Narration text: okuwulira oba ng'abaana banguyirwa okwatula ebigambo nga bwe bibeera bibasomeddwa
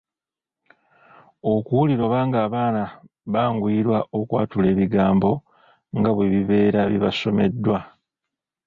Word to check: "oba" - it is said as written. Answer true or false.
true